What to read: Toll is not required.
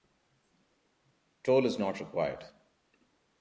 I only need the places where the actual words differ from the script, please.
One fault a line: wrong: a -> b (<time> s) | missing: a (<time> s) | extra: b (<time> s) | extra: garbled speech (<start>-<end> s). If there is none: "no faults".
no faults